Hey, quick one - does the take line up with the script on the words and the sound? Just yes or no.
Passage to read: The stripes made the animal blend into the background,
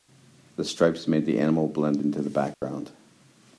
no